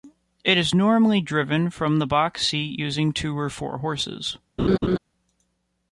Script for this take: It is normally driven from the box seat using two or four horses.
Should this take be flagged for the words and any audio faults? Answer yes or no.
yes